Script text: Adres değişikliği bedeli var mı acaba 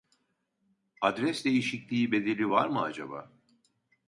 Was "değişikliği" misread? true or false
false